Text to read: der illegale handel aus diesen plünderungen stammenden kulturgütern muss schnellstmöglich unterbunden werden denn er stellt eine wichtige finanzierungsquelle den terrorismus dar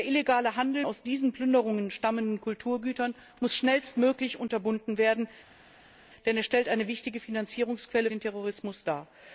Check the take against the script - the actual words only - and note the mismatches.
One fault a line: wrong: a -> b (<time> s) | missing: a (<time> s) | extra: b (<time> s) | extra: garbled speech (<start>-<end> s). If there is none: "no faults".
no faults